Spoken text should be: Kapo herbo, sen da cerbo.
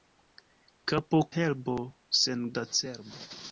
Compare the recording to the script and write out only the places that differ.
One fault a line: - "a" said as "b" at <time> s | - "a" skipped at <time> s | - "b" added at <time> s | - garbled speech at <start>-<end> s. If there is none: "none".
none